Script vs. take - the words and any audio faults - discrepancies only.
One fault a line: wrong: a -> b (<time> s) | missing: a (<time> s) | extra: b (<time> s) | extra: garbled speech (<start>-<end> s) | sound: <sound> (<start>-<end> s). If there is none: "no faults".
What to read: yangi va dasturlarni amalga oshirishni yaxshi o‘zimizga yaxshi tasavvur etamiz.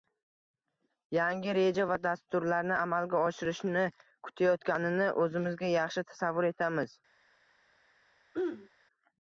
extra: reja (1.6 s)
wrong: yaxshi -> kutayotganini (4.3 s)
sound: throat clearing (8.3-8.7 s)